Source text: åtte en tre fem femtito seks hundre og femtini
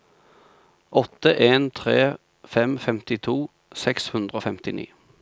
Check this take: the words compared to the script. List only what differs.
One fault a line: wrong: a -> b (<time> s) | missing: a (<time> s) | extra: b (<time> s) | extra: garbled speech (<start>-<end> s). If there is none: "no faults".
no faults